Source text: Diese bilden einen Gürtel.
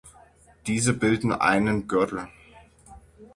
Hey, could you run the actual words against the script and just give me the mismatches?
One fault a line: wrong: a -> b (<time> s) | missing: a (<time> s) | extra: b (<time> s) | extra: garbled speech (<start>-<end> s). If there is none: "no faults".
no faults